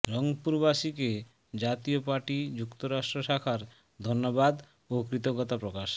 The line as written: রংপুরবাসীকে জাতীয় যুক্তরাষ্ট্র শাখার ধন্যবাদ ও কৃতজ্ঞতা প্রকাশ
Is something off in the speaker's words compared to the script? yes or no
yes